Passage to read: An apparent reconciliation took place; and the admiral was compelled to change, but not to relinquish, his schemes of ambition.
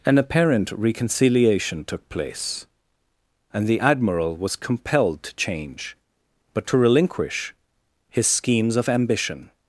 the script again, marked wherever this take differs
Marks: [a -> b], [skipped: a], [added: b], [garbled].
An apparent reconciliation took place; and the admiral was compelled to change, but [skipped: not] to relinquish, his schemes of ambition.